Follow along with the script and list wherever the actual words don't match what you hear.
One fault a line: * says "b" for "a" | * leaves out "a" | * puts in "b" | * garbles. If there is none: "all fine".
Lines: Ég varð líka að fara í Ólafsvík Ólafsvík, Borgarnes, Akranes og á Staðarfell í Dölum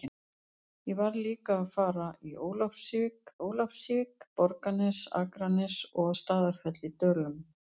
all fine